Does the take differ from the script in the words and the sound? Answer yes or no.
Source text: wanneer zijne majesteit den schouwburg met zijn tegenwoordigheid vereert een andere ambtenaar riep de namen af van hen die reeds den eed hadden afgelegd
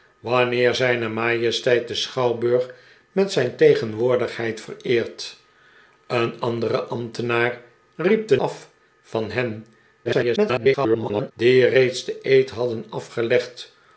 yes